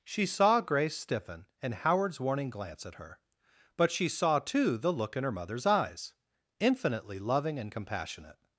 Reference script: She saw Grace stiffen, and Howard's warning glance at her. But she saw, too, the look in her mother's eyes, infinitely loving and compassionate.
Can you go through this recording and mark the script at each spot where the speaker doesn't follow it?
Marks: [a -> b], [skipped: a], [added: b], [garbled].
She saw Grace stiffen, and Howard's warning glance at her. But she saw, too, the look in her mother's eyes, infinitely loving and compassionate.